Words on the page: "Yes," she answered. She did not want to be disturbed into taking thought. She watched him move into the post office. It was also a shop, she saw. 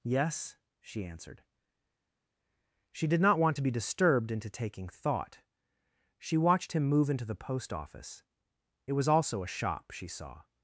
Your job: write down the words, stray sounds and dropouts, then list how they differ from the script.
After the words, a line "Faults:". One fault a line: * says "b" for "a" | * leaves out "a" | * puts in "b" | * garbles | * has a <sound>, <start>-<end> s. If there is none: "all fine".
"Yes," she answered. She did not want to be disturbed into taking thought. She watched him move into the post office. It was also a shop, she saw.
Faults:
all fine